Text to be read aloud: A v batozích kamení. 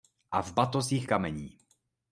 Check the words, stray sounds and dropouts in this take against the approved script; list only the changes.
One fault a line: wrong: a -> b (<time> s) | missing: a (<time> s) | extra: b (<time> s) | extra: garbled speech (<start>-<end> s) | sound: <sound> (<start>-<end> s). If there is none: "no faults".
no faults